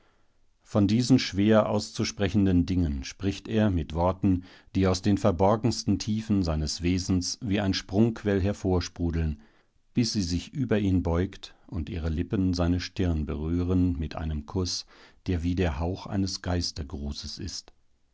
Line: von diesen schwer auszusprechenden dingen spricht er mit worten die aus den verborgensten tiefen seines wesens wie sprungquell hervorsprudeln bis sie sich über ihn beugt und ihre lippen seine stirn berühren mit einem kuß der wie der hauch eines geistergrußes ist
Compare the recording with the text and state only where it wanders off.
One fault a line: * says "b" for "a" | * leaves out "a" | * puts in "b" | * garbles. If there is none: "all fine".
* puts in "ein"